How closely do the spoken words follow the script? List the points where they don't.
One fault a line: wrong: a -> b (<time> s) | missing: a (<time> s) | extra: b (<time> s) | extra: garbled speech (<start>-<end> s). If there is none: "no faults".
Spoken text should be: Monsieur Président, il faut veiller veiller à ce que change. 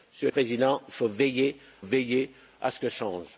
no faults